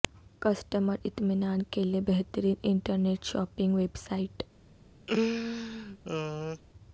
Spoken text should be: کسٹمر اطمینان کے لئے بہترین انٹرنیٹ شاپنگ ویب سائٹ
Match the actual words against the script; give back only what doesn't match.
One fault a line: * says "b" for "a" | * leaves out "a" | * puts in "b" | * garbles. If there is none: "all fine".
all fine